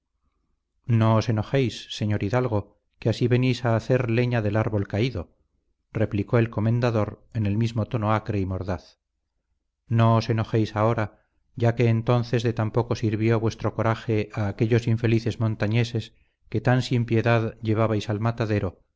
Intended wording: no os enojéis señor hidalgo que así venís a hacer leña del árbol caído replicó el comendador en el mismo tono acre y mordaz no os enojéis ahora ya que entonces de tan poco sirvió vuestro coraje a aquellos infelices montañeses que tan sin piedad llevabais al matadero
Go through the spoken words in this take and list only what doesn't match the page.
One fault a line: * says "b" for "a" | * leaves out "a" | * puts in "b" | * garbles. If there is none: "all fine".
all fine